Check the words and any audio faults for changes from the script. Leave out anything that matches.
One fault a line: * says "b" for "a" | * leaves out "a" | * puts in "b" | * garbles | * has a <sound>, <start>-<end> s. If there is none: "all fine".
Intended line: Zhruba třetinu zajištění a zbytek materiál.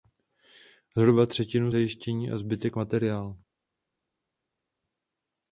all fine